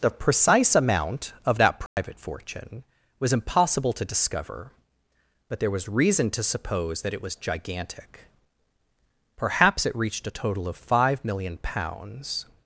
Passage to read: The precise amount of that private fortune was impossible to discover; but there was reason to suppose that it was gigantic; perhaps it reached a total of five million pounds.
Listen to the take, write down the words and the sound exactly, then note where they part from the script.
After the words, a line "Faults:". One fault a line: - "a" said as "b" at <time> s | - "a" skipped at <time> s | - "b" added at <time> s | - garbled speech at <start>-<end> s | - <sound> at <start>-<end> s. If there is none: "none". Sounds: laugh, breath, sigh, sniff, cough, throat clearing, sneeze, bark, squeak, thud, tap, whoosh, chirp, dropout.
The precise amount of that private fortune was impossible to discover; but there was reason to suppose that it was gigantic; perhaps it reached a total of five million pounds.
Faults:
- dropout at 1.9-2.0 s